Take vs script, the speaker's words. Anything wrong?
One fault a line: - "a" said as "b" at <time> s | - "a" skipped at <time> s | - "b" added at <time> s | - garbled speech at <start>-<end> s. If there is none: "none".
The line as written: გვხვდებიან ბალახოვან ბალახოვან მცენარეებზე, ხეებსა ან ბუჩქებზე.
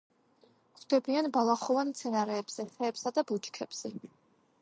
- "ბალახოვან" skipped at 1.9 s
- "ან" said as "და" at 3.2 s